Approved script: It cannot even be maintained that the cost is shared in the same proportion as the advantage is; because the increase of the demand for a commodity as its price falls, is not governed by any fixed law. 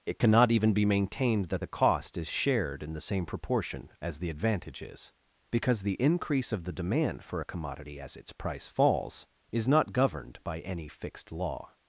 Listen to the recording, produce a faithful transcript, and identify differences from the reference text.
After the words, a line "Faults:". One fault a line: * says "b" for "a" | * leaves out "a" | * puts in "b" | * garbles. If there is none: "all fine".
It cannot even be maintained that the cost is shared in the same proportion as the advantage is; because the increase of the demand for a commodity as its price falls, is not governed by any fixed law.
Faults:
all fine